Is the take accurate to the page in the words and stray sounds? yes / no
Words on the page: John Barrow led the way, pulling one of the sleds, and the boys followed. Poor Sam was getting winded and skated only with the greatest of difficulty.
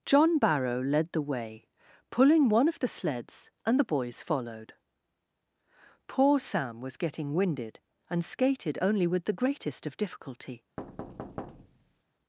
no